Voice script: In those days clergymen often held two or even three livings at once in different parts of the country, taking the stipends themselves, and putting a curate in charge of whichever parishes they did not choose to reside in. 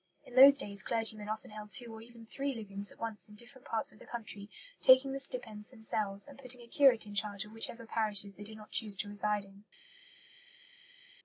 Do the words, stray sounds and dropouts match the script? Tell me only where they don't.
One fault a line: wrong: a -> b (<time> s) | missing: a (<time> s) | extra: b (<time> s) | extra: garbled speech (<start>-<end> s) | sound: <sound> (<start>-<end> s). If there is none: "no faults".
no faults